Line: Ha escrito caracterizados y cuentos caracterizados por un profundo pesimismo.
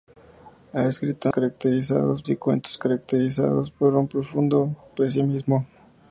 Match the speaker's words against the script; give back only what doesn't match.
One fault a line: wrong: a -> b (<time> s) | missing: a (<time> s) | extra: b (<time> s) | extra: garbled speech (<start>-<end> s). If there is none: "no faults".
no faults